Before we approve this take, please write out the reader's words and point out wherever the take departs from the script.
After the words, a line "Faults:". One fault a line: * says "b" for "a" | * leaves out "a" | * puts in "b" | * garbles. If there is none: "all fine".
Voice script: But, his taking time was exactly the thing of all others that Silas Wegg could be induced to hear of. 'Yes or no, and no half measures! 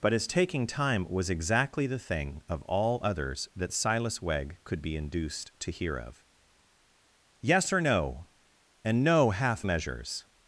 But, his taking time was exactly the thing of all others that Silas Wegg could be induced to hear of. 'Yes or no, and no half measures!
Faults:
all fine